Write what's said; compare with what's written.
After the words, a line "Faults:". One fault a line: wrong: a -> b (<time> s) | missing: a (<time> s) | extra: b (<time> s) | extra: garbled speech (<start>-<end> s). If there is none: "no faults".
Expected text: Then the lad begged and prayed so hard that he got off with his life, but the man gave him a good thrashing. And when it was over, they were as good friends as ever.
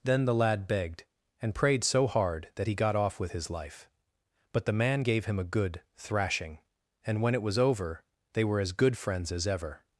Then the lad begged and prayed so hard that he got off with his life, but the man gave him a good thrashing. And when it was over, they were as good friends as ever.
Faults:
no faults